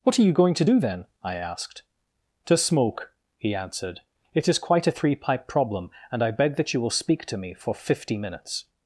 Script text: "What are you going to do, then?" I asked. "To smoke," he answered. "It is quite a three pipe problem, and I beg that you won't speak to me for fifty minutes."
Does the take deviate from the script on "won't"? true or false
true